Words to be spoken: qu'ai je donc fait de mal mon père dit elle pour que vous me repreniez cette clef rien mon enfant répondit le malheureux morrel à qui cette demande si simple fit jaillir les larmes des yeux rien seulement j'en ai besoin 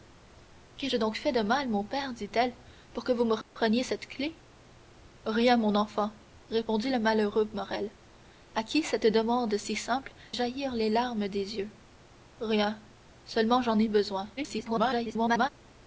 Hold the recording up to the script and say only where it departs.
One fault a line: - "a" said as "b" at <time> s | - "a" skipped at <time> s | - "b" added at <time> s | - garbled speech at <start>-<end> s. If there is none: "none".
- "fit" skipped at 10.1 s
- garbled speech at 14.4-15.5 s